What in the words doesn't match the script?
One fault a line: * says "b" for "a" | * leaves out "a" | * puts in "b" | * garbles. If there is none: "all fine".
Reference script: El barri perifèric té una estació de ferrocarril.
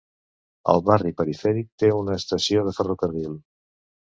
all fine